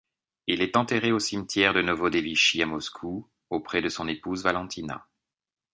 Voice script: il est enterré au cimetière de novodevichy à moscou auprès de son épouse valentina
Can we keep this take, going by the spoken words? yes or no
yes